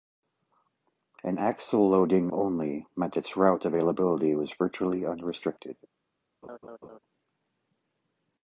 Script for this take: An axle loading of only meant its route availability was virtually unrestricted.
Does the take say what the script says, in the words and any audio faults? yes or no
no